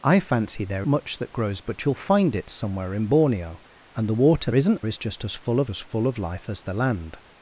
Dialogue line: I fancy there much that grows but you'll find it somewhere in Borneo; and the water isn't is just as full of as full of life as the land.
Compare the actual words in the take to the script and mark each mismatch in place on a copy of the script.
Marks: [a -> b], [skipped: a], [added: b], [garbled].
I fancy there much that grows but you'll find it somewhere in Borneo; and the water isn't is just as full of as full of life as the land.